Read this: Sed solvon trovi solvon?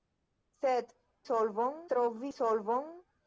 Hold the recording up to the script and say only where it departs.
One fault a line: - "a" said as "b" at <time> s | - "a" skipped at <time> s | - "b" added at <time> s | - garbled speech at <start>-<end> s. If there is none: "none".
none